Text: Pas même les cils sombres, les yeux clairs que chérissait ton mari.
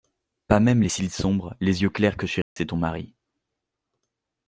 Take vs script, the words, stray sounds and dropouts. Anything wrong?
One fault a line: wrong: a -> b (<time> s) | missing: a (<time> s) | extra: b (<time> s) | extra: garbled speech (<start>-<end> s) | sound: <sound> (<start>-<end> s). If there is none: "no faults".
sound: dropout (2.4-2.6 s)